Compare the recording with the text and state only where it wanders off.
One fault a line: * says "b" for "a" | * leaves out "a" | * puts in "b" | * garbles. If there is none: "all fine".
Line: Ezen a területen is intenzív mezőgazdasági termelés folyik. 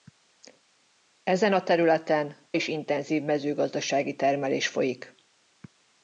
all fine